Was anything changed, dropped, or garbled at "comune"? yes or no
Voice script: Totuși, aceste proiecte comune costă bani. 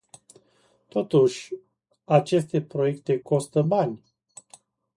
yes